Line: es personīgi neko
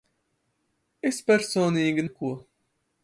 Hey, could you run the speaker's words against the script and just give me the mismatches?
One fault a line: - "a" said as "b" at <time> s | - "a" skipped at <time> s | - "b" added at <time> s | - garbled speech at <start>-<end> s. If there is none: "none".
none